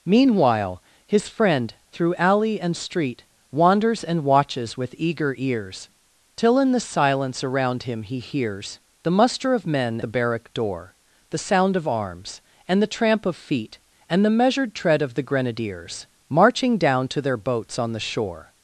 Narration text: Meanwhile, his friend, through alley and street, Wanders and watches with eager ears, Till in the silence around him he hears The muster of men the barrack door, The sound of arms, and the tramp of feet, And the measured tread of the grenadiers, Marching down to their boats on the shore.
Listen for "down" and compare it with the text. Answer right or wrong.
right